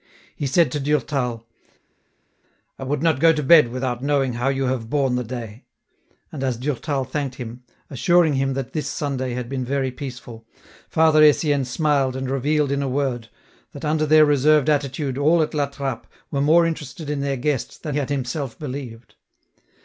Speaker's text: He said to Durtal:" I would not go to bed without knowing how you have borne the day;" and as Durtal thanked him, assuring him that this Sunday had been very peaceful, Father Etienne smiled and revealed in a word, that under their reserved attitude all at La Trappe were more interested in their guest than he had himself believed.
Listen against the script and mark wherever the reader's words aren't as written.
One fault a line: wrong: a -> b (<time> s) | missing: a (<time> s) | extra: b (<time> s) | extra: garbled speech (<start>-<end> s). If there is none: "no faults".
missing: he (17.9 s)